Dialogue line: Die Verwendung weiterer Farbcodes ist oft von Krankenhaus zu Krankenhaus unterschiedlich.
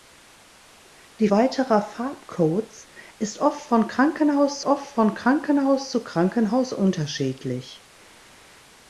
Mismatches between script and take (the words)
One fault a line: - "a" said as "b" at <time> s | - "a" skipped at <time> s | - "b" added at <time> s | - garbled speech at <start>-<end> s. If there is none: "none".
- "Verwendung" skipped at 1.3 s
- "oft von Krankenhaus" added at 4.6 s